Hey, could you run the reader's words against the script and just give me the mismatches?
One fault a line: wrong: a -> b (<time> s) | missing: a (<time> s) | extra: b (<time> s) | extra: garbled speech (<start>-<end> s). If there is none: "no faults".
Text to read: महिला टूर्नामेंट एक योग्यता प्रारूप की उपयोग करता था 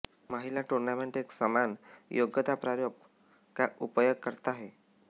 extra: समान (1.3 s)
wrong: की -> का (3.5 s)
wrong: था -> है (4.5 s)